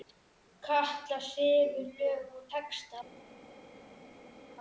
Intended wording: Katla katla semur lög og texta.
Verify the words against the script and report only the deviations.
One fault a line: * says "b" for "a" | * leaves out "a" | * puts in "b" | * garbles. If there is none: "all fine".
* leaves out "katla"